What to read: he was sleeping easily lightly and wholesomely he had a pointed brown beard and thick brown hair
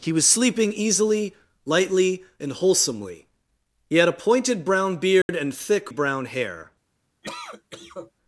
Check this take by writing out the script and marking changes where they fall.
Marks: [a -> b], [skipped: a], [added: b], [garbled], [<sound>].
he was sleeping easily lightly and wholesomely he had a pointed brown beard [dropout] and thick brown hair [cough]